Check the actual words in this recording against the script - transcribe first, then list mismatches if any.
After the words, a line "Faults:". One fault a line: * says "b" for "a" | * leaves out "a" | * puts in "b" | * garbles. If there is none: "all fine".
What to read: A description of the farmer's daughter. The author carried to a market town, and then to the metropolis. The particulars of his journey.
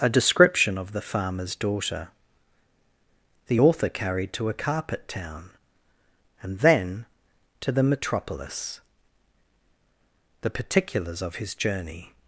A description of the farmer's daughter. The author carried to a carpet town, and then to the metropolis. The particulars of his journey.
Faults:
* says "carpet" for "market"